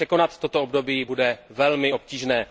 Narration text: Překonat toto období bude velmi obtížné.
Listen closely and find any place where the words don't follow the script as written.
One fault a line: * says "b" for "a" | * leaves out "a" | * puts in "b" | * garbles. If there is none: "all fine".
all fine